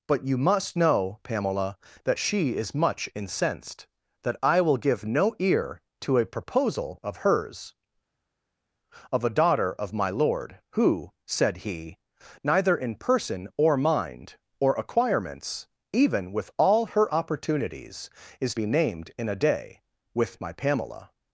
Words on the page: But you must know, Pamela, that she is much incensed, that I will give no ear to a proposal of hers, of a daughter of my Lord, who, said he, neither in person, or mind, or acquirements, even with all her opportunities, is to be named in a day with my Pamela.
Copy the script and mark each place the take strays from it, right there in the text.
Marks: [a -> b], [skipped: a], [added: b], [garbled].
But you must know, Pamela, that she is much incensed, that I will give no ear to a proposal of hers, of a daughter of my Lord, who, said he, neither in person, or mind, or acquirements, even with all her opportunities, is [skipped: to] be named in a day with my Pamela.